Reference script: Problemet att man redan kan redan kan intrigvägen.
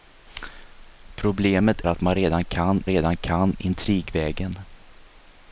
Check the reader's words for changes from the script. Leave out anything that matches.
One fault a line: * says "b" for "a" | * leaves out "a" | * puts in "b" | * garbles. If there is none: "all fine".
all fine